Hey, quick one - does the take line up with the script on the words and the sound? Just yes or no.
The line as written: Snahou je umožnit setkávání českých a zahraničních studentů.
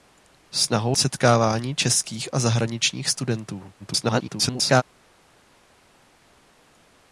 no